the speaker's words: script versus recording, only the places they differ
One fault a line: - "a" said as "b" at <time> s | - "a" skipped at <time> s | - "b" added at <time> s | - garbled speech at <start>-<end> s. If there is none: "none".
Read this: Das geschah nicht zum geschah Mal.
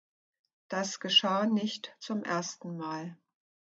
- "geschah" said as "ersten" at 2.2 s